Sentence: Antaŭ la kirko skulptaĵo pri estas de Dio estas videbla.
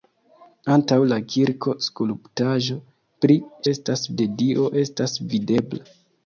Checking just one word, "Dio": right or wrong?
right